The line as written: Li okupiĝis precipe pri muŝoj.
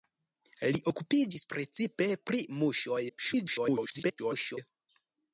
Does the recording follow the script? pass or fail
fail